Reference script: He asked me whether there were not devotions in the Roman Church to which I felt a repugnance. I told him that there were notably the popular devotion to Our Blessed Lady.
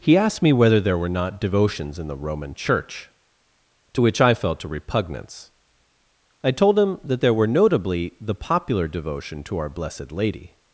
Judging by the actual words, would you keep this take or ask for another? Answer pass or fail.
pass